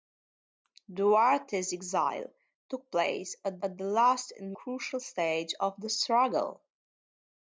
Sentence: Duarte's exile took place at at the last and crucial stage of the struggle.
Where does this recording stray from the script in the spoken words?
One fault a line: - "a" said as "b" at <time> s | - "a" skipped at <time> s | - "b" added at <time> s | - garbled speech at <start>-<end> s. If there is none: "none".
none